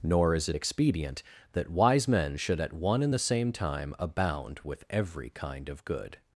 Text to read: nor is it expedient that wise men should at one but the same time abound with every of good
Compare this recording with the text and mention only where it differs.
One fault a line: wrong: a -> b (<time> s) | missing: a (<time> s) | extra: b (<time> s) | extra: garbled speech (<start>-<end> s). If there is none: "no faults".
wrong: but -> and (3.0 s)
extra: kind (5.3 s)